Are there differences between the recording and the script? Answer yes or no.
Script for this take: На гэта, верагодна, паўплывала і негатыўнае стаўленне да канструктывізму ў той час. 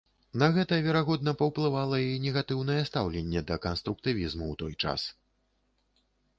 no